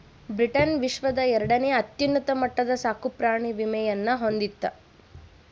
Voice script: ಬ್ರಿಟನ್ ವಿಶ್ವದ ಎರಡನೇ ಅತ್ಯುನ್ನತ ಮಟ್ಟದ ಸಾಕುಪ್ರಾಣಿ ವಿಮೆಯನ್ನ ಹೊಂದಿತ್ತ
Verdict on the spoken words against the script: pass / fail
pass